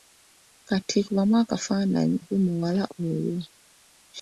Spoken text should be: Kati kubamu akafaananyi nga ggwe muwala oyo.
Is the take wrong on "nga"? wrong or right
wrong